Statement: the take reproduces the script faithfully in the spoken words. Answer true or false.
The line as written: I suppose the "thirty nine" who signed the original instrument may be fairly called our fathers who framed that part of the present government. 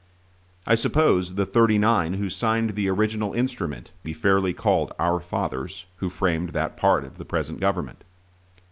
false